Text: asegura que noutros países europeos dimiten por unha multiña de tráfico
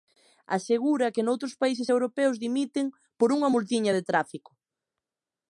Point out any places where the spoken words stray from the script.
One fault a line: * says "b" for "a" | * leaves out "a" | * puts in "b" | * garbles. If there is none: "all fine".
all fine